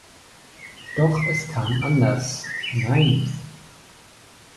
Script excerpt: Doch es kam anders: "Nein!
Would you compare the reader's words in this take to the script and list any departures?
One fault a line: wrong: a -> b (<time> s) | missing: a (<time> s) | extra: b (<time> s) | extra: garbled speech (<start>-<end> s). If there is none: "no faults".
no faults